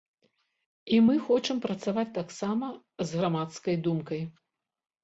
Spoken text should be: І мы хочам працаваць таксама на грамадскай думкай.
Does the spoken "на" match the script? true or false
false